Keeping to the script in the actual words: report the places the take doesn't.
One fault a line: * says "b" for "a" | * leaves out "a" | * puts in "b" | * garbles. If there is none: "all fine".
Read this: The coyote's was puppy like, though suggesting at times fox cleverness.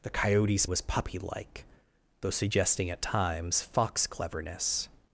all fine